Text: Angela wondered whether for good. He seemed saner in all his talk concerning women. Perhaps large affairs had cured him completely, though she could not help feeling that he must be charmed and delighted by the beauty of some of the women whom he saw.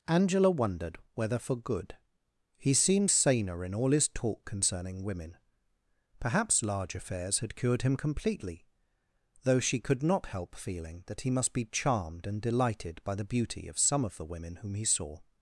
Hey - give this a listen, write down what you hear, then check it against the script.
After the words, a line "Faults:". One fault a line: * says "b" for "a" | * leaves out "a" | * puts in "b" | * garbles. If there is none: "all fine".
Angela wondered whether for good. He seemed saner in all his talk concerning women. Perhaps large affairs had cured him completely, though she could not help feeling that he must be charmed and delighted by the beauty of some of the women whom he saw.
Faults:
all fine